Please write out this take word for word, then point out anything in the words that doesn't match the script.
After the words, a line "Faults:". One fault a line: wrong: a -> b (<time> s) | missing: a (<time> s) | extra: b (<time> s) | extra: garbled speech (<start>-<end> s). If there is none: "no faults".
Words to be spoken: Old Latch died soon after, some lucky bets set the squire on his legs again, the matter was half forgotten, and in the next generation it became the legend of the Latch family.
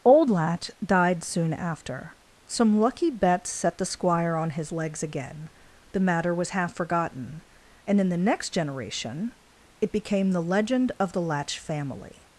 Old Latch died soon after, some lucky bets set the squire on his legs again, the matter was half forgotten, and in the next generation it became the legend of the Latch family.
Faults:
no faults